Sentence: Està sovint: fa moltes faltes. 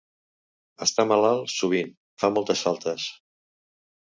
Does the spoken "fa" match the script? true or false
true